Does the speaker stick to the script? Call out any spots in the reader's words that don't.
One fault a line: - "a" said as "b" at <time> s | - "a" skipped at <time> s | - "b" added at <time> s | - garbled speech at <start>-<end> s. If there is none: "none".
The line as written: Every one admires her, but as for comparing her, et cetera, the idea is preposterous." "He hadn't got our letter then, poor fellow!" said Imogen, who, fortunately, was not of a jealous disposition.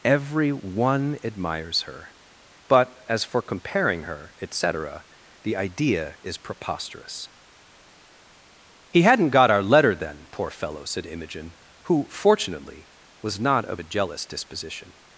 none